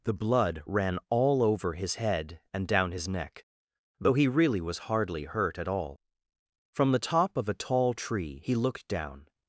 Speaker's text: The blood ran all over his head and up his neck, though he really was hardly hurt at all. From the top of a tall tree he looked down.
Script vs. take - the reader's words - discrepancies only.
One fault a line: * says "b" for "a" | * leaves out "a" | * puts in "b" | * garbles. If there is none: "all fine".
* says "down" for "up"